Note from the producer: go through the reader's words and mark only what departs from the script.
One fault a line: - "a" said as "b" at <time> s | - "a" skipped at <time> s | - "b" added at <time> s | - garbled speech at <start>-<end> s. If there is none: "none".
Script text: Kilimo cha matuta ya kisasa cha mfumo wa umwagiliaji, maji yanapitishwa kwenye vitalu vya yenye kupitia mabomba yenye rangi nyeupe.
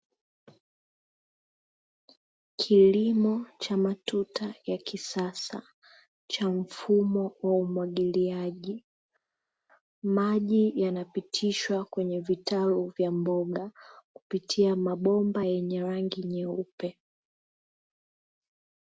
- "yenye" said as "mboga" at 13.1 s